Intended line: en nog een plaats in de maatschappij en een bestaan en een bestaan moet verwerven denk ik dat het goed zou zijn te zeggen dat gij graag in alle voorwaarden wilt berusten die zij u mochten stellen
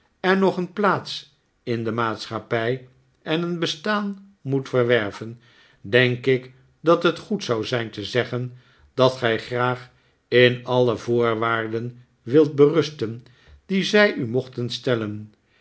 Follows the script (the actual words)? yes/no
no